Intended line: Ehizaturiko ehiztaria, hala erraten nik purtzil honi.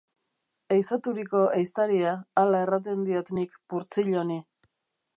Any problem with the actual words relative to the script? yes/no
yes